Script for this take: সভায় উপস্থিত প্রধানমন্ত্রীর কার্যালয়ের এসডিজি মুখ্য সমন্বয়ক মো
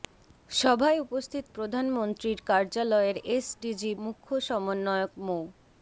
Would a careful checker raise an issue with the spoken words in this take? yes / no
no